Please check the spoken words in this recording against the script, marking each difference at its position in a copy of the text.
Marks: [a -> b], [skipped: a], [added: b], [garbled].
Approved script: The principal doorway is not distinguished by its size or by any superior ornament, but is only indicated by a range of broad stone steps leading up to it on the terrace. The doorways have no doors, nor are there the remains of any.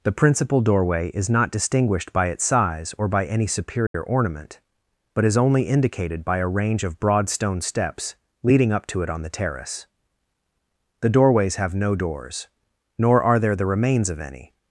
The principal doorway is not distinguished by its size or by any superior ornament, but is only indicated by a range of broad stone steps leading up to it on the terrace. The doorways have no doors, nor are there the remains of any.